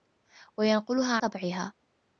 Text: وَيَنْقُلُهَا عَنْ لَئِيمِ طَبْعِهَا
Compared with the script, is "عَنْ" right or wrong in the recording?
wrong